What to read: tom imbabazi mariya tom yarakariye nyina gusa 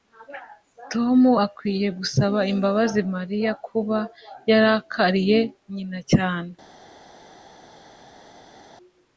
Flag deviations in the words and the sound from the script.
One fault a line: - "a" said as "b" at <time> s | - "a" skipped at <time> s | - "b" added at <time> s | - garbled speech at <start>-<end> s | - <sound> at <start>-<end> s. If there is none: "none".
- "akwiye gusaba" added at 1.4 s
- "tom" said as "kuba" at 3.7 s
- "gusa" said as "cyane" at 6.1 s